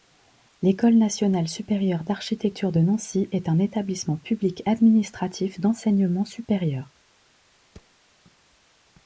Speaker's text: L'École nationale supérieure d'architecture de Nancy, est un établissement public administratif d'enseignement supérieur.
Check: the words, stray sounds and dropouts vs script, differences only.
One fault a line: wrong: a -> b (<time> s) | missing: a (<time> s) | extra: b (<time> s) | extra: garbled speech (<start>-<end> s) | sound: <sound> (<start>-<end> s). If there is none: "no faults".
sound: thud (7.7-8.0 s)